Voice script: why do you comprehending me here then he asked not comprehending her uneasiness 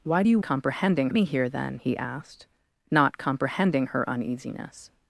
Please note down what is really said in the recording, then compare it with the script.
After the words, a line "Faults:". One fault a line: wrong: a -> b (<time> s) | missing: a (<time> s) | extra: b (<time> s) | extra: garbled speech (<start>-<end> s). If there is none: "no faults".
why do you comprehending me here then he asked not comprehending her uneasiness
Faults:
no faults